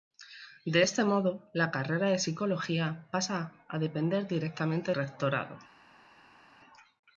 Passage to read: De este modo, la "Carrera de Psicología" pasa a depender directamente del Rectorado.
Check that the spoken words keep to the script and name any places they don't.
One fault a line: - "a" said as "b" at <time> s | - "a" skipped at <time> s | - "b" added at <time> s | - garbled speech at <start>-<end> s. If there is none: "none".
- "del" skipped at 4.9 s